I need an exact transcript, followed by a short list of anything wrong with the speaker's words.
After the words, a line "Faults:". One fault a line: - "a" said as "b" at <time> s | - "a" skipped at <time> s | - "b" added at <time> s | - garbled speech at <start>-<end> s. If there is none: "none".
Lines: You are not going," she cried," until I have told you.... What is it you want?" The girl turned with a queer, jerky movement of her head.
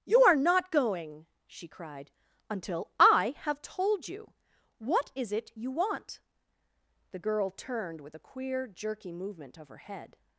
You are not going," she cried," until I have told you.... What is it you want?" The girl turned with a queer, jerky movement of her head.
Faults:
none